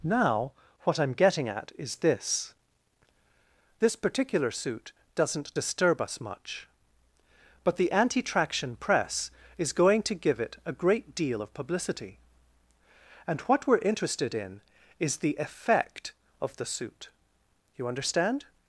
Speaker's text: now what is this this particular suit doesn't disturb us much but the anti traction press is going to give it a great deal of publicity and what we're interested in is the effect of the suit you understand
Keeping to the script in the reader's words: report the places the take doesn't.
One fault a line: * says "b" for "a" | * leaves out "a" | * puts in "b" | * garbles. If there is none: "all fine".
* puts in "i'm getting at"